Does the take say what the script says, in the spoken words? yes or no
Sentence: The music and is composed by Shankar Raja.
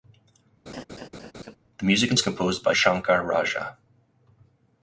yes